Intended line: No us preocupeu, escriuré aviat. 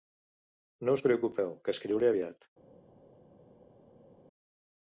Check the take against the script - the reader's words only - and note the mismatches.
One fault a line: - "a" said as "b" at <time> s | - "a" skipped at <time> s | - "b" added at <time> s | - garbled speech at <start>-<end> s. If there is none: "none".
- "que" added at 1.6 s